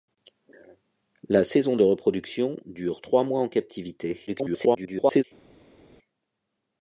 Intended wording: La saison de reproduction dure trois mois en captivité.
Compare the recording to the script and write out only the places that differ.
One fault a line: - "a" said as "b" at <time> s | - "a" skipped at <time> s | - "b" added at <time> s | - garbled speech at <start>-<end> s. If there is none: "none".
- garbled speech at 4.3-5.2 s